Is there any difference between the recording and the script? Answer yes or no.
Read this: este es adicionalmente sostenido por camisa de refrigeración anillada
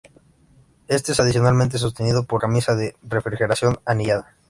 no